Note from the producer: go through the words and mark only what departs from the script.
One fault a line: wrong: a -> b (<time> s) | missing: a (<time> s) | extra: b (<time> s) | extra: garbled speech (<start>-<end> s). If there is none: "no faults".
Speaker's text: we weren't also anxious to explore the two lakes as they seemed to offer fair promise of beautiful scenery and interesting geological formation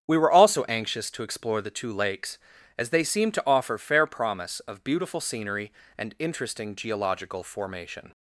wrong: weren't -> were (0.2 s)